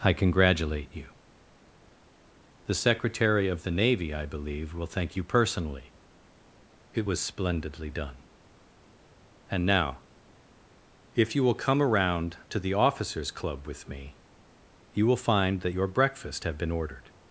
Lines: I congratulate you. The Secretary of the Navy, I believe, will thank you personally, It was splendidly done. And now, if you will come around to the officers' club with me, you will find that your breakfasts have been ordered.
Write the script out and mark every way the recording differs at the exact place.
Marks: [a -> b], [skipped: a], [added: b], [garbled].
I congratulate you. The Secretary of the Navy, I believe, will thank you personally, It was splendidly done. And now, if you will come around to the officers' club with me, you will find that your [breakfasts -> breakfast] have been ordered.